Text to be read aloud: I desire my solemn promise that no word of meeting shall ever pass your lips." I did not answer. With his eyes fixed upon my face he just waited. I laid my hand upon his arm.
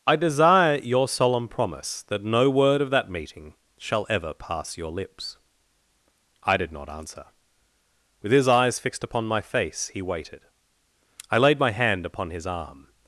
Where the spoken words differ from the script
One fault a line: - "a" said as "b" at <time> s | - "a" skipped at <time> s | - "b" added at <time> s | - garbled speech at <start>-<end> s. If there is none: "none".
- "my" said as "your" at 0.8 s
- "that" added at 2.9 s
- "just" skipped at 10.0 s